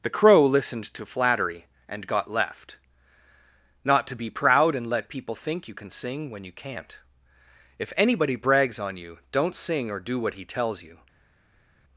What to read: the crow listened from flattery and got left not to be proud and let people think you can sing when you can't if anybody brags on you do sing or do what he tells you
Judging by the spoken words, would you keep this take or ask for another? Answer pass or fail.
fail